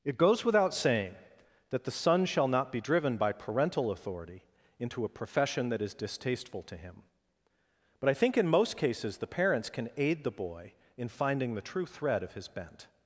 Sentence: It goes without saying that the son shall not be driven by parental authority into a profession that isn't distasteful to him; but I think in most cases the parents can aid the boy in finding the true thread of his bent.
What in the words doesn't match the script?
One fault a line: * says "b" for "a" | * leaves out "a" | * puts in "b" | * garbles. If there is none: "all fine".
* says "is" for "isn't"